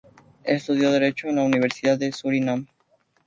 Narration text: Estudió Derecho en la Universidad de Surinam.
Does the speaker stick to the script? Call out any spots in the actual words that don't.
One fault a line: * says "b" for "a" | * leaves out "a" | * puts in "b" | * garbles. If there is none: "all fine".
all fine